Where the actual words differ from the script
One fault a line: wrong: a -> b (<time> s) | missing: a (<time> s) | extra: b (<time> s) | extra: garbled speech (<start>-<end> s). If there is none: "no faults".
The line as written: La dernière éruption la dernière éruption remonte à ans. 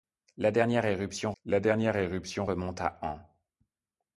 no faults